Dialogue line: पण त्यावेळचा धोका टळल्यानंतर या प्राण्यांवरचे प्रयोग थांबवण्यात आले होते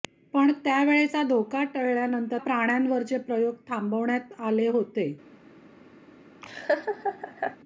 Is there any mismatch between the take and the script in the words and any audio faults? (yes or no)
yes